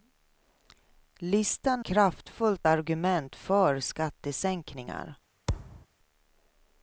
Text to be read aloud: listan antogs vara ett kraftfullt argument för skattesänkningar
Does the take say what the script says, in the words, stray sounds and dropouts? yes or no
no